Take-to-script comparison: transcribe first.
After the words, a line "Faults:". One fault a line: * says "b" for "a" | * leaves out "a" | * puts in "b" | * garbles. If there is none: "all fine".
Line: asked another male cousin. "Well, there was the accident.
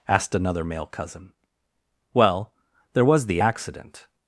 asked another male cousin. "Well, there was the accident.
Faults:
all fine